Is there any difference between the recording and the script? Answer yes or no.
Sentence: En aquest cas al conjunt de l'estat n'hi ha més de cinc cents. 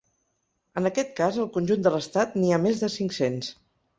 no